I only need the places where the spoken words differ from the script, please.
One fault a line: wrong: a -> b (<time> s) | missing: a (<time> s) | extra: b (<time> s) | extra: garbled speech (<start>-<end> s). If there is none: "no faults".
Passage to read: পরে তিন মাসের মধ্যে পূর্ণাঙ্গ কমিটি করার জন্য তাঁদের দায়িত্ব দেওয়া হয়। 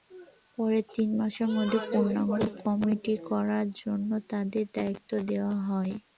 no faults